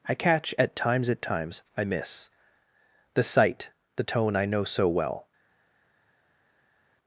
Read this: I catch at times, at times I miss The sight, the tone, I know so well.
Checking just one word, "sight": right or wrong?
right